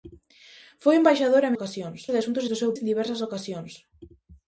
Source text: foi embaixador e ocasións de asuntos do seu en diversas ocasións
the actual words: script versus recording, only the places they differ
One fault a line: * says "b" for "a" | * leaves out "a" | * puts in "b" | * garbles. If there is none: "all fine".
all fine